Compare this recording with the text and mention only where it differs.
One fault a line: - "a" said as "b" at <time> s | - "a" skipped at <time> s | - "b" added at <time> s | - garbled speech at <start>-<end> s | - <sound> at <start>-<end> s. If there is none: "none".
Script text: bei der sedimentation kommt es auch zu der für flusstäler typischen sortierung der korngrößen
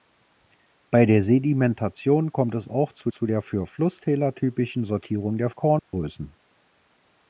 - "zu" added at 3.1 s
- dropout at 5.8-5.9 s